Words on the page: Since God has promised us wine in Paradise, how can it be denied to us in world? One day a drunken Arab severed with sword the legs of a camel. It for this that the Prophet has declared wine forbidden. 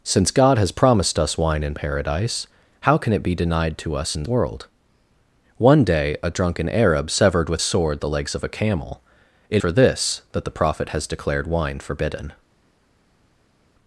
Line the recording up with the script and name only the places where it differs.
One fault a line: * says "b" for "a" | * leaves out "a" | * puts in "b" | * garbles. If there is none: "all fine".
all fine